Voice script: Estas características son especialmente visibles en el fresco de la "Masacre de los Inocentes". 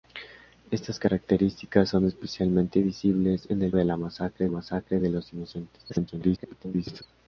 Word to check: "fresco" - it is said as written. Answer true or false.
false